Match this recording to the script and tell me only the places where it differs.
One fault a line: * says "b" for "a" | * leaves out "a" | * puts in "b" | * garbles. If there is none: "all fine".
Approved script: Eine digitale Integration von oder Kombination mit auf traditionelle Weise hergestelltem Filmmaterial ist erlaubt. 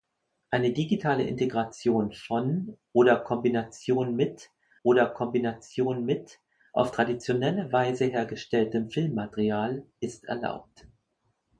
* puts in "oder Kombination mit"